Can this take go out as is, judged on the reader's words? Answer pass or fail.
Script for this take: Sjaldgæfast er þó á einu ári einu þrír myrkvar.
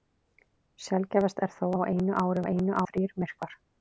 pass